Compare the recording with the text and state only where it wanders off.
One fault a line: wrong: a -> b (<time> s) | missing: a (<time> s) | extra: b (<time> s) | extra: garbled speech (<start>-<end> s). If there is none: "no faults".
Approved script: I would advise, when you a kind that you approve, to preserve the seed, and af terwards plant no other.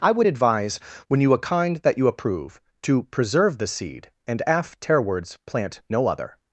no faults